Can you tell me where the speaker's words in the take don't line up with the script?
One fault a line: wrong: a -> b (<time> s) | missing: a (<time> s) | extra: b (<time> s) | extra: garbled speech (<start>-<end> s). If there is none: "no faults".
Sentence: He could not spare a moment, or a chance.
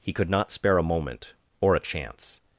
no faults